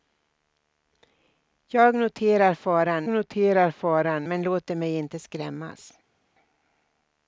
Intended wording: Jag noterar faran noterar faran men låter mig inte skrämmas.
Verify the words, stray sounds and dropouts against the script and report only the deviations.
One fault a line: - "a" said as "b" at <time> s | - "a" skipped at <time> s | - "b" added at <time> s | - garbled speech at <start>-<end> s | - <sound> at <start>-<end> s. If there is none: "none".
none